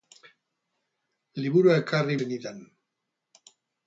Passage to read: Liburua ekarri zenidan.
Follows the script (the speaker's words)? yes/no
yes